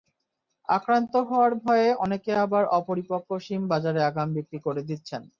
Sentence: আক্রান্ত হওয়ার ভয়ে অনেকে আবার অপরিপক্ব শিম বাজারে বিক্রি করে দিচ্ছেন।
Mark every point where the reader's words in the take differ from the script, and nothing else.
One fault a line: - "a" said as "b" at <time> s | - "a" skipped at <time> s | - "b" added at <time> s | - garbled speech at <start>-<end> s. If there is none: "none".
- "আগাম" added at 4.1 s